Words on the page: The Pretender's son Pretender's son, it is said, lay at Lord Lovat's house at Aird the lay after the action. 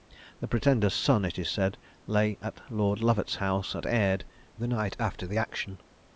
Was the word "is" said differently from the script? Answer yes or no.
no